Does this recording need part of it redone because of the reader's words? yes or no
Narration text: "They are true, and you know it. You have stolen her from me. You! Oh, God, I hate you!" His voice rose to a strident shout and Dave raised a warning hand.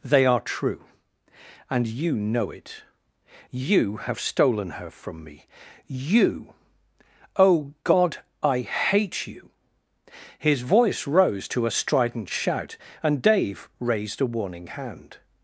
no